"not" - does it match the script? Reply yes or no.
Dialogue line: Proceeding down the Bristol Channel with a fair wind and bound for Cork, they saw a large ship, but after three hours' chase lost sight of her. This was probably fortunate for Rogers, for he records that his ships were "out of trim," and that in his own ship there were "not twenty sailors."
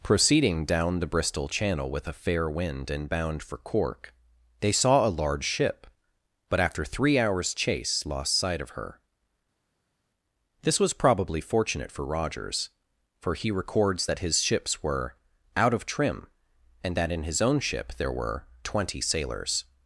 no